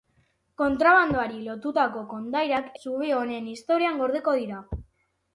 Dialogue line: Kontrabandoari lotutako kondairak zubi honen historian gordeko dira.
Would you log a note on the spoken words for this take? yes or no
no